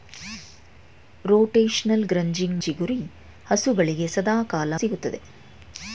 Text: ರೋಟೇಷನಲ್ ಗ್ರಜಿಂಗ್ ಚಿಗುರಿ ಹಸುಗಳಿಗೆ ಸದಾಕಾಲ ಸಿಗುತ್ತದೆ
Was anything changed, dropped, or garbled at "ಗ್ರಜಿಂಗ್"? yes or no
no